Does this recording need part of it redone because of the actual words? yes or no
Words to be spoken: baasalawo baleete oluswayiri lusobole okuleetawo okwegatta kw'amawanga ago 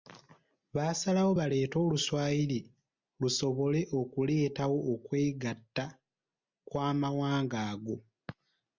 no